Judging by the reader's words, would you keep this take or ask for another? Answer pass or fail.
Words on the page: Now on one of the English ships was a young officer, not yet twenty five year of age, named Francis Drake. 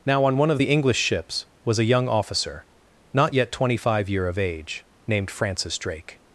pass